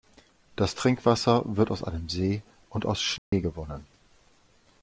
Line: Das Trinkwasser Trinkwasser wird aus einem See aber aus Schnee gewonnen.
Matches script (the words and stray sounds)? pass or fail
fail